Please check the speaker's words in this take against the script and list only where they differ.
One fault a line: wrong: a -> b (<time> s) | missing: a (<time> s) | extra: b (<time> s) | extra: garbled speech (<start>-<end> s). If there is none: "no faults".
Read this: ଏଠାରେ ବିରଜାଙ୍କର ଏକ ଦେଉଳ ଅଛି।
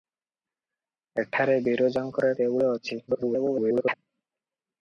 missing: ଏକ (2.3 s)
extra: garbled speech (3.1-3.9 s)